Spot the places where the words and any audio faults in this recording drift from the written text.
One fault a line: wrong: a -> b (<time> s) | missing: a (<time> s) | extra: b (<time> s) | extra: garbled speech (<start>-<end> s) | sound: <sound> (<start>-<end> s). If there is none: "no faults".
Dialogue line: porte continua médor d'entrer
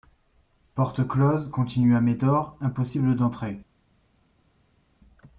extra: close (1.1 s)
extra: impossible (2.6 s)